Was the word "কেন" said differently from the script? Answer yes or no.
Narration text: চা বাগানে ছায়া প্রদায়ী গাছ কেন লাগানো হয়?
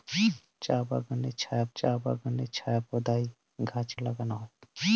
yes